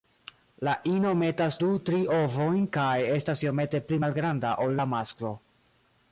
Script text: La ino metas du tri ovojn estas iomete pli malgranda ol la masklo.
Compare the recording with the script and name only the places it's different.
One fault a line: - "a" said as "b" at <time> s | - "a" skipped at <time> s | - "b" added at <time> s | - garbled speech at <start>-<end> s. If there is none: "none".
- "kaj" added at 2.8 s